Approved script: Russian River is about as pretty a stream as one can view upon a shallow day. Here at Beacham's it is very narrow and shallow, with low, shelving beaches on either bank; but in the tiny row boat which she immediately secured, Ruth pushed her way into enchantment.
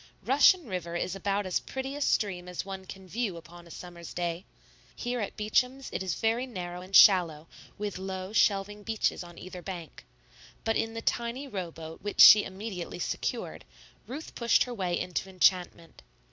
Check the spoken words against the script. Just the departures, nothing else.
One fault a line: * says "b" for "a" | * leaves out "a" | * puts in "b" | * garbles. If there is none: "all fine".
* says "summer's" for "shallow"